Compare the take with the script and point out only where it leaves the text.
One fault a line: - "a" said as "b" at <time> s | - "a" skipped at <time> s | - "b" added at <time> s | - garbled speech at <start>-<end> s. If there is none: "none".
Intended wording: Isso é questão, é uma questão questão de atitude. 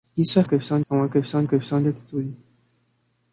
none